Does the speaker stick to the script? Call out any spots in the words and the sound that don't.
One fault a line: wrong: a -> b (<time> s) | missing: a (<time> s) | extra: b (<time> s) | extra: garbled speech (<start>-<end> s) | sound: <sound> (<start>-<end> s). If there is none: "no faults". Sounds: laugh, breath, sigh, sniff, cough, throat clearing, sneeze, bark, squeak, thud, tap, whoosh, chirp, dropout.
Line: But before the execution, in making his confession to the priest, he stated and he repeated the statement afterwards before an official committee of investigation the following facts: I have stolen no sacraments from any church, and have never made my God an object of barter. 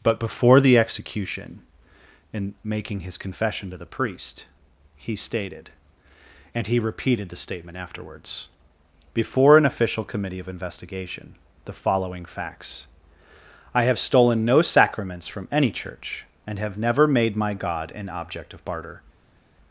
no faults